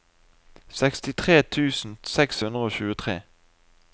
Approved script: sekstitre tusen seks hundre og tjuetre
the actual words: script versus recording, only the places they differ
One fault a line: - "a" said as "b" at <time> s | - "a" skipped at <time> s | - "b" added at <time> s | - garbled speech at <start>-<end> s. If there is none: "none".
none